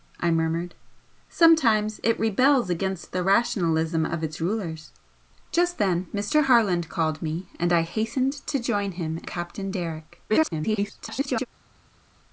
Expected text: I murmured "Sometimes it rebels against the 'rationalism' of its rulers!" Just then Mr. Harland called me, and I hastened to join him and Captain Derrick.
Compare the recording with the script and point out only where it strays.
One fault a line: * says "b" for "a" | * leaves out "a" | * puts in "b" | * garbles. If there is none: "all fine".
* leaves out "and"
* garbles